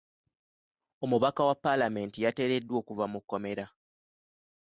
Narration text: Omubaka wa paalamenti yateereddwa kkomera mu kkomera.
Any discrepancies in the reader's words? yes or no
yes